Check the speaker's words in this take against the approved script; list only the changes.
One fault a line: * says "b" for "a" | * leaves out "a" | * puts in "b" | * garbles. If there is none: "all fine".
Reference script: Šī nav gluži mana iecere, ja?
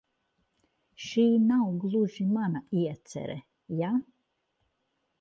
all fine